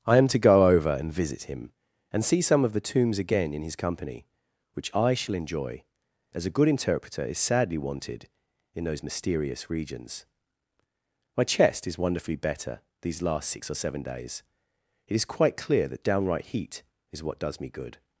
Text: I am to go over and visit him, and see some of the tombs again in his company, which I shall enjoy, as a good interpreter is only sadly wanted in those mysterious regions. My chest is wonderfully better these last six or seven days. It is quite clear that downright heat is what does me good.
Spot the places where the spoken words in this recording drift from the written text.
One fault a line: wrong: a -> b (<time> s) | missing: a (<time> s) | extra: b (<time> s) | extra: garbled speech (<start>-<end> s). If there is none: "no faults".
missing: only (7.4 s)